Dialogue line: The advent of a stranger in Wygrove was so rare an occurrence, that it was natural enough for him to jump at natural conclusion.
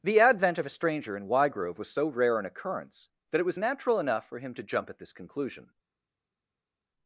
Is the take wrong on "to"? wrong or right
right